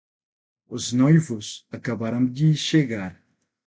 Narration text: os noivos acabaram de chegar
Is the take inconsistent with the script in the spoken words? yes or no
no